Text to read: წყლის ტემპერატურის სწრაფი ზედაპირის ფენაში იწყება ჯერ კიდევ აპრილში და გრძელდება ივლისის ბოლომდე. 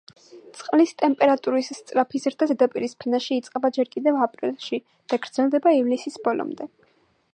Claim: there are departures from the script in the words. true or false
true